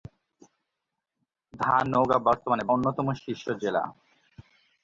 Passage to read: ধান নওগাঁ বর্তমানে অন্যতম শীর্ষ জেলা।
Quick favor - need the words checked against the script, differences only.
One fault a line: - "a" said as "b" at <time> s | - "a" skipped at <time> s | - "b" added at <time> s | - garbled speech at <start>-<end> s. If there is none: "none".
none